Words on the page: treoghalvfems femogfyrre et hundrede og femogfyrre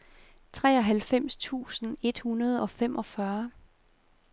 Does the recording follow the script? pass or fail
fail